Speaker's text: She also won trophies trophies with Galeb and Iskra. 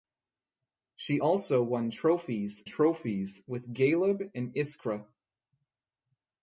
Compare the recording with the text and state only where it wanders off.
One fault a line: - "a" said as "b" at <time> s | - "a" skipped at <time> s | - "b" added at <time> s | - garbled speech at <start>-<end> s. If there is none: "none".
none